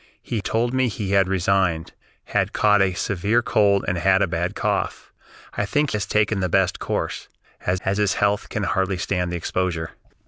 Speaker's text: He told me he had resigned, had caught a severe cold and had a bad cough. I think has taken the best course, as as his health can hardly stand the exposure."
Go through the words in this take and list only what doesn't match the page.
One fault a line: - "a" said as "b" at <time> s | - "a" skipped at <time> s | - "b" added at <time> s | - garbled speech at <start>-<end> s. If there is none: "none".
none